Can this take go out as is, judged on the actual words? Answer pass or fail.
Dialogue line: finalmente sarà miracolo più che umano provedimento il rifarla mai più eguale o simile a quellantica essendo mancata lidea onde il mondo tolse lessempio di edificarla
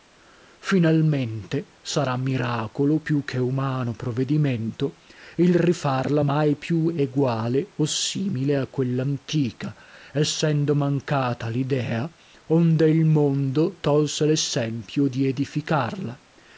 pass